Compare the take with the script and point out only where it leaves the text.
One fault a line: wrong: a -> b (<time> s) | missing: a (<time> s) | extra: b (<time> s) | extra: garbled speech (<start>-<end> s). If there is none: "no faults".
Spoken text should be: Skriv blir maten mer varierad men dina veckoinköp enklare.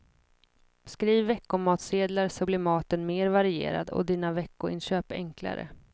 extra: veckomatsedlar så (1.2 s)
wrong: men -> och (3.9 s)